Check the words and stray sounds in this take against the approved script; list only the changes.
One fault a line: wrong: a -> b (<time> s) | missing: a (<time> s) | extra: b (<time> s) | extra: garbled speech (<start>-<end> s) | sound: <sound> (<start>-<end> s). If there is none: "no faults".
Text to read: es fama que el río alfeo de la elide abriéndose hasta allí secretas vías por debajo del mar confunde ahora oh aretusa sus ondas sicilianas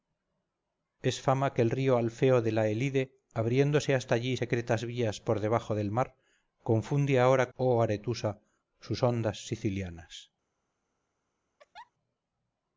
sound: laugh (11.6-11.9 s)